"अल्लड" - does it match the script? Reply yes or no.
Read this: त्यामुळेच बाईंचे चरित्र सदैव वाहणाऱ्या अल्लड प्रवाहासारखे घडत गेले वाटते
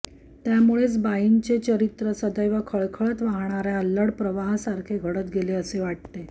yes